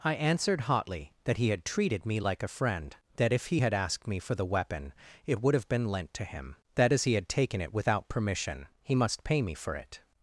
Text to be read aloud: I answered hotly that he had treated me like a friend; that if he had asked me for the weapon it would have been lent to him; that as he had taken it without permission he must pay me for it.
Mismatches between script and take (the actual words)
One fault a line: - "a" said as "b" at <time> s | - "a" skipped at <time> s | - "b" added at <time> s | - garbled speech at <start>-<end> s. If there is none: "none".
none